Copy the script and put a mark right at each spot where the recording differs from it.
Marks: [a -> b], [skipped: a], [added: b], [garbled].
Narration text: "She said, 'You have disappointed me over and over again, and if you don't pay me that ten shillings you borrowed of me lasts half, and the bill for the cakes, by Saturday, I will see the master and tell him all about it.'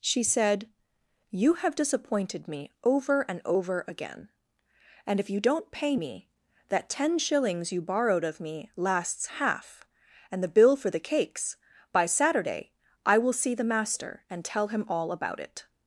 "She said, 'You have disappointed me over and over again, and if you don't pay me that ten shillings you borrowed of me lasts half, and the bill for the cakes, by Saturday, I will see the master and tell him all about it.'